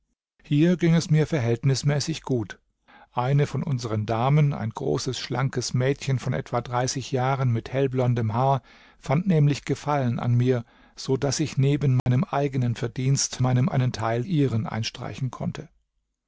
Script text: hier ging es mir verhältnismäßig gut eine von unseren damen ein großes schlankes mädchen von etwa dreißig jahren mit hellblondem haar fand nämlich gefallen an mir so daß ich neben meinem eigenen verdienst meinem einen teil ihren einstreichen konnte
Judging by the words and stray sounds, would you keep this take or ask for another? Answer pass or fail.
fail